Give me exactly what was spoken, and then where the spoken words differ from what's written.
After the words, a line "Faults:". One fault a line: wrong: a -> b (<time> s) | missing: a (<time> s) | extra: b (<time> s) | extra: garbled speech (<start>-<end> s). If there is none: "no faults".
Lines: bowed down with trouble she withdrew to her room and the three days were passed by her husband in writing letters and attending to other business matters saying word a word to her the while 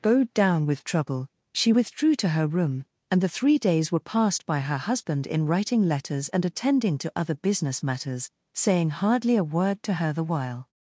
bowed down with trouble she withdrew to her room and the three days were passed by her husband in writing letters and attending to other business matters saying hardly a word to her the while
Faults:
wrong: word -> hardly (8.9 s)